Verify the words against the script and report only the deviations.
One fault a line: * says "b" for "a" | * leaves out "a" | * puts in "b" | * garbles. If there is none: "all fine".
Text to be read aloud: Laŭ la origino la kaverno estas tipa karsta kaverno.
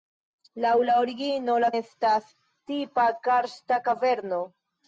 * leaves out "kaverno"